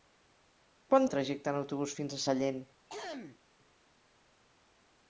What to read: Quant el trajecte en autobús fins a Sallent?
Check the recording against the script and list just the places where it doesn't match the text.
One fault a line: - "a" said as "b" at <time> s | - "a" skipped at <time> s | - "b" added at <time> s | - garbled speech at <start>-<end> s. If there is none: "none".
none